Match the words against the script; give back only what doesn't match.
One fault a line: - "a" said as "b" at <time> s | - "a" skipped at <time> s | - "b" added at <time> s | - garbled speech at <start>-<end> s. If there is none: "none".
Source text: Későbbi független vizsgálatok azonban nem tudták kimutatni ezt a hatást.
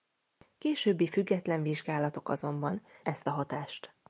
- "nem tudták kimutatni" skipped at 2.8 s